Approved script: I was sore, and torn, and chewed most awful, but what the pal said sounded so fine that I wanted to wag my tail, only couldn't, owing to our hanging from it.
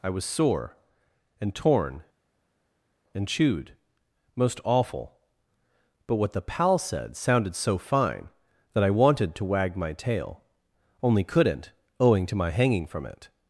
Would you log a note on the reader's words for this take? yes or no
yes